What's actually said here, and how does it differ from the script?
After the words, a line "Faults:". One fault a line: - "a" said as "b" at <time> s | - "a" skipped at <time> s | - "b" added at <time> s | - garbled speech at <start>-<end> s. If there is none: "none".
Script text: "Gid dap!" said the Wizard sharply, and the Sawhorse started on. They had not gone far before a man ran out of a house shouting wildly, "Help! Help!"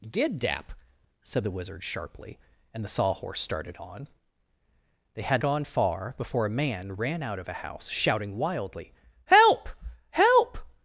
"Gid dap!" said the Wizard sharply, and the Sawhorse started on. They had gone far before a man ran out of a house shouting wildly, "Help! Help!"
Faults:
- "not" skipped at 5.4 s